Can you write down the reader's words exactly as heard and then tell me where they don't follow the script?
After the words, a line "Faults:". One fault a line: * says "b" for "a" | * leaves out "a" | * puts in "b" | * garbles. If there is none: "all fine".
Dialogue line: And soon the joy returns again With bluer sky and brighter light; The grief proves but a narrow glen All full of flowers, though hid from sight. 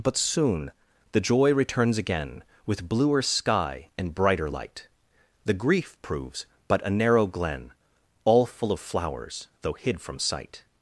But soon the joy returns again With bluer sky and brighter light; The grief proves but a narrow glen All full of flowers, though hid from sight.
Faults:
* says "But" for "And"